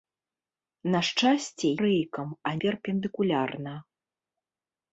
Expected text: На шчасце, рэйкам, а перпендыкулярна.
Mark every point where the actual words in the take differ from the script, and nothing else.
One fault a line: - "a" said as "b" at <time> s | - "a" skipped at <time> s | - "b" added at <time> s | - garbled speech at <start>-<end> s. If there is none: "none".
none